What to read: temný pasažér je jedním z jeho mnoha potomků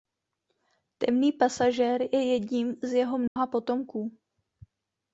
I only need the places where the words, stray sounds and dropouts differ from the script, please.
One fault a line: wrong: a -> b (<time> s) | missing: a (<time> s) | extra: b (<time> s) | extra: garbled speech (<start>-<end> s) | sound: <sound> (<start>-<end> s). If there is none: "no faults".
sound: dropout (3.3-3.4 s)